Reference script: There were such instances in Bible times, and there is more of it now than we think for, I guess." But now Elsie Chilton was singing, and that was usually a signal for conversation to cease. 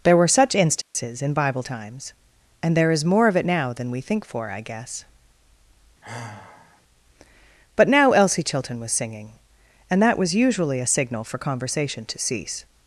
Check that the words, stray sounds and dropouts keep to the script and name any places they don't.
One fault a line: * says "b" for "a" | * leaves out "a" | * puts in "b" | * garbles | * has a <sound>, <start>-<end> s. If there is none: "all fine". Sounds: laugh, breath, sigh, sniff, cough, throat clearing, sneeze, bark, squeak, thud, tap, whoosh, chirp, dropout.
* has a dropout, 0.8-0.9 s
* has a sigh, 6.0-6.8 s